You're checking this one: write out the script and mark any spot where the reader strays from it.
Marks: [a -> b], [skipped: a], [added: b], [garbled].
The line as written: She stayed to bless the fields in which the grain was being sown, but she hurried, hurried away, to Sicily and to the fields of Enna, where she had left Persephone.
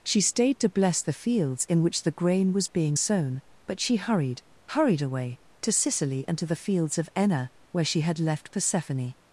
She stayed to bless the fields in which the grain was being sown, but she hurried, hurried away, to Sicily and to the fields of Enna, where she had left Persephone.